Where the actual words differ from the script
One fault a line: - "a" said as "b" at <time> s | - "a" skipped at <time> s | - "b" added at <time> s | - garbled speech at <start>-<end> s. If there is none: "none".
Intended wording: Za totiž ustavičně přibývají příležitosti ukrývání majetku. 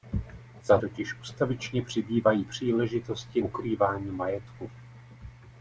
none